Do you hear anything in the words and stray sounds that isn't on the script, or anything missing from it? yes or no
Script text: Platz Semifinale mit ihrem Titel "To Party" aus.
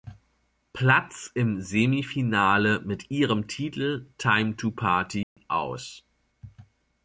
yes